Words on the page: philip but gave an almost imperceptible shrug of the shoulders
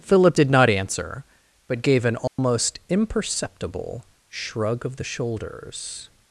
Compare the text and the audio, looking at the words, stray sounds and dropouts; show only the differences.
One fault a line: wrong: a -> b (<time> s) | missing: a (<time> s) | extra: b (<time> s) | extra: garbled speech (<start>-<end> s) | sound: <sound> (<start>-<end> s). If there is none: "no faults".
extra: did not answer (0.3 s)
sound: dropout (2.3-2.4 s)